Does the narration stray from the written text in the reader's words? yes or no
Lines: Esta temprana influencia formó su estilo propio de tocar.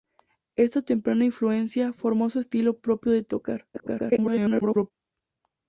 yes